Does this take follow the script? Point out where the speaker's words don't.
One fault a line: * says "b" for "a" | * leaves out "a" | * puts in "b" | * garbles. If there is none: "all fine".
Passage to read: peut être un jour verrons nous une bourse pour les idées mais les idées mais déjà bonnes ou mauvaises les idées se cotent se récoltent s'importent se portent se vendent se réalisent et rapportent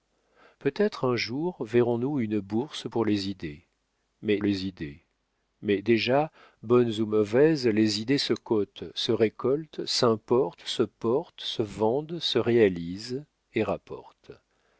all fine